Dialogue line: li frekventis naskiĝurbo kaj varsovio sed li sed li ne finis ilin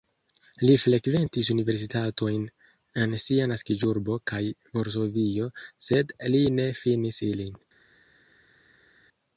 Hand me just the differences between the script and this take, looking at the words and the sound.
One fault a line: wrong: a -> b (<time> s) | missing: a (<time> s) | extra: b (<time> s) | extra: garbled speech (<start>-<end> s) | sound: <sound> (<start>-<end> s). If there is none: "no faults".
extra: universitatojn en sia (1.6 s)
missing: sed li (6.5 s)